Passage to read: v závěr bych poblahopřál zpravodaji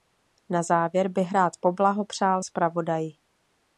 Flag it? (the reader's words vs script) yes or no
yes